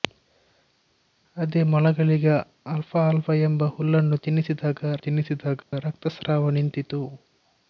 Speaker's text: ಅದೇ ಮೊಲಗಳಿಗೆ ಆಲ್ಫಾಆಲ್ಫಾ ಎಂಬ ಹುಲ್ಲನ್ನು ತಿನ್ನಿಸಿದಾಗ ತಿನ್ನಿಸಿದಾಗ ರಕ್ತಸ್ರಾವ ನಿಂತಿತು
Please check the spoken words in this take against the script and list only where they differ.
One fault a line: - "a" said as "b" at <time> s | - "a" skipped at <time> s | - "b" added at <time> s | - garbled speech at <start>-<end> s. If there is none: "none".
none